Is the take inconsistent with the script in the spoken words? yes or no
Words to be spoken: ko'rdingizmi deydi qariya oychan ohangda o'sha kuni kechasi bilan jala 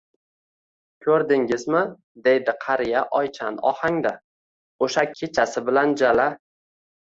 yes